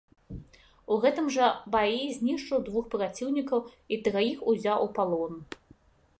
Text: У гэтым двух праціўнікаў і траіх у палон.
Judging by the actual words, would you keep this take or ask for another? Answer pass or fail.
fail